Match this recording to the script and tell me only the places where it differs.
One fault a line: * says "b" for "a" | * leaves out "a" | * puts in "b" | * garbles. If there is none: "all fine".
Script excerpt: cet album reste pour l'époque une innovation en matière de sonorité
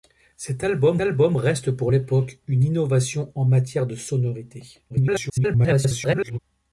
* puts in "album"
* garbles